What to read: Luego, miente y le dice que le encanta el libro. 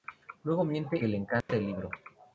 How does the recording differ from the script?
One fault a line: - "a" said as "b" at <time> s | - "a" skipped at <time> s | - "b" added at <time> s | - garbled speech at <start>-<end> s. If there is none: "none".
- "y le dice" skipped at 1.0 s